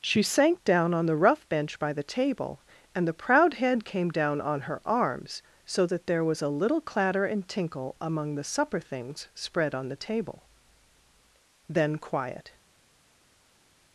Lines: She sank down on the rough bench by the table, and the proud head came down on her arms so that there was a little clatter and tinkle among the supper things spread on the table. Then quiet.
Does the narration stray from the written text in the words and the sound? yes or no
no